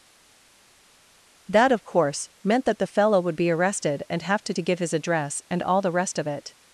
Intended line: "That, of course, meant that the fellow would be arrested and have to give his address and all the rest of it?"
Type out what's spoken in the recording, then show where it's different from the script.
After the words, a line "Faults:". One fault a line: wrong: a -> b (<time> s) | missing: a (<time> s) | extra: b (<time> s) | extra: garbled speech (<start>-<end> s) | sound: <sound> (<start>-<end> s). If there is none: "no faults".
"That, of course, meant that the fellow would be arrested and have to to give his address and all the rest of it?"
Faults:
extra: to (4.5 s)